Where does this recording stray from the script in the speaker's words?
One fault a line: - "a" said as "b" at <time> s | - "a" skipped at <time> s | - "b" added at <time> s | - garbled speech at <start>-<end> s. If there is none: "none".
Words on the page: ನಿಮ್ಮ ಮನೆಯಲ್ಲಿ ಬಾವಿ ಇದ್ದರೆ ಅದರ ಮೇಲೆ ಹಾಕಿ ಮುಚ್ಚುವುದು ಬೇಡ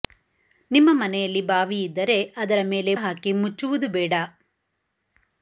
none